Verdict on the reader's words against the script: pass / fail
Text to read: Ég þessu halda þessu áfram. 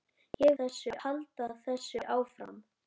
pass